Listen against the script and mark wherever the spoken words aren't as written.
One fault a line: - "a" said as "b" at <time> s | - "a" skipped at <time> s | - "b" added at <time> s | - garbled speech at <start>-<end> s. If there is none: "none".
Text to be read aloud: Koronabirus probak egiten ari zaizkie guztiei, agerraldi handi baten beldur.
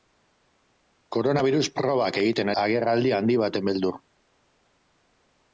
- "ari zaizkie guztiei" skipped at 2.5 s